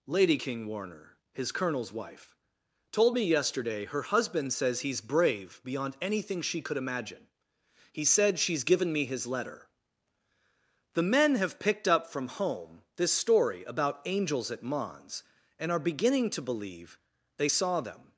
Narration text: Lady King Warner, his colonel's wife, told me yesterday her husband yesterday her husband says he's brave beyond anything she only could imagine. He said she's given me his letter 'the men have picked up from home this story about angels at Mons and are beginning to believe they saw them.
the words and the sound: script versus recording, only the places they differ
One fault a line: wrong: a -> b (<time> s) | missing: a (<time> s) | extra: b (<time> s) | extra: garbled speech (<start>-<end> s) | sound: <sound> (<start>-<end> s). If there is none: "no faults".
missing: yesterday her husband (4.5 s)
missing: only (6.6 s)